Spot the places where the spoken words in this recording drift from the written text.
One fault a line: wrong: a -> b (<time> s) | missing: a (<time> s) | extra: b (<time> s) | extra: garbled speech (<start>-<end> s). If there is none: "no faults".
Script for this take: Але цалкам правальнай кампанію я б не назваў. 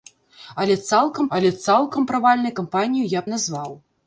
extra: але цалкам (1.4 s)
missing: б (3.3 s)